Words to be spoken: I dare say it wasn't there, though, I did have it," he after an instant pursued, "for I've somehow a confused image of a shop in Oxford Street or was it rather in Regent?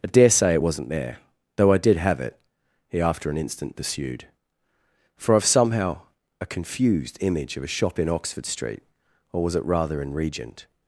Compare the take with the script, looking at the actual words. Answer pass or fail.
pass